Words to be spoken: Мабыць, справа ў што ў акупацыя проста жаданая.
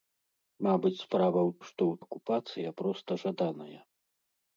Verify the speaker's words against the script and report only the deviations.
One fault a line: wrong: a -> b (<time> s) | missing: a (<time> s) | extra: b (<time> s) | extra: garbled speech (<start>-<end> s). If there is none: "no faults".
no faults